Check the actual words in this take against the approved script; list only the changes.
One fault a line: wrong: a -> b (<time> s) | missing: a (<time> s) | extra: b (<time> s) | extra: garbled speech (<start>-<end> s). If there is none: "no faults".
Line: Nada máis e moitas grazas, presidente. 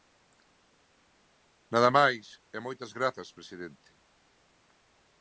no faults